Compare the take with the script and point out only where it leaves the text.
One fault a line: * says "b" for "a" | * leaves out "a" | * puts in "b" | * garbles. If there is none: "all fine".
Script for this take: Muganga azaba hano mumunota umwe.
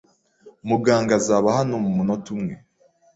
all fine